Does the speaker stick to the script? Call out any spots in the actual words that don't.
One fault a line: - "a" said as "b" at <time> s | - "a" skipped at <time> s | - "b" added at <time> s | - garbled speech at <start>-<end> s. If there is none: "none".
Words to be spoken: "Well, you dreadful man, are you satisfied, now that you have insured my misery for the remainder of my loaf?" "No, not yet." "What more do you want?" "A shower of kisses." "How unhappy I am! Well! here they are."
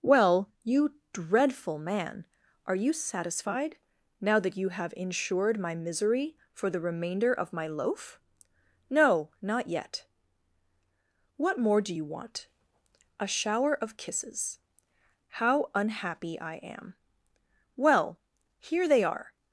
none